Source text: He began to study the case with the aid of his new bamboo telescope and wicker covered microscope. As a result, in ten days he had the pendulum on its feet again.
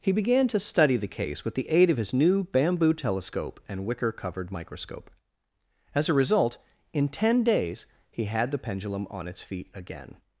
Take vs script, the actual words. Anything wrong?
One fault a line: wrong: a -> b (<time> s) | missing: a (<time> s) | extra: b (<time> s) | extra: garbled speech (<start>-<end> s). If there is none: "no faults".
no faults